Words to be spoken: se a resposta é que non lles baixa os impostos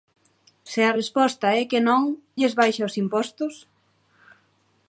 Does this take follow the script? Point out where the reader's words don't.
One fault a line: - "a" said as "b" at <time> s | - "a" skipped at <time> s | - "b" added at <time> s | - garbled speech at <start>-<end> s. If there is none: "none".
none